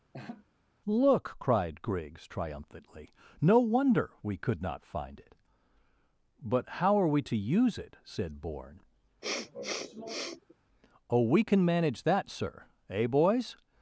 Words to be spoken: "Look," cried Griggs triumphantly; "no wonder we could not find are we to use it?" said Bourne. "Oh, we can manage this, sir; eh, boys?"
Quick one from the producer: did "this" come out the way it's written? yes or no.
no